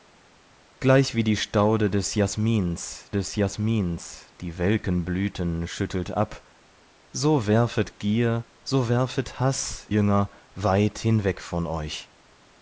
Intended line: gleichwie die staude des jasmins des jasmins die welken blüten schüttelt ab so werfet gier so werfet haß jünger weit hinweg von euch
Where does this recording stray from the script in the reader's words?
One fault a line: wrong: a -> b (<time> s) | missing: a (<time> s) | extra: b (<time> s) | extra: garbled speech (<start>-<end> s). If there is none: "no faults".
no faults